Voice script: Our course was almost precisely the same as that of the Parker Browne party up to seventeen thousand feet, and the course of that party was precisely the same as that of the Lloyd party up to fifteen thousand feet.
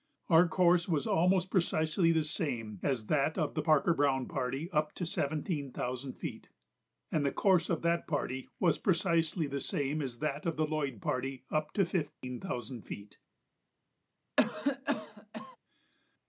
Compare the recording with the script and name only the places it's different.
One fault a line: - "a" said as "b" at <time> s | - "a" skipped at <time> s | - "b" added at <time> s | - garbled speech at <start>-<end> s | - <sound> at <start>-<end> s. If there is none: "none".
- dropout at 12.1-12.2 s
- cough at 14.4-15.6 s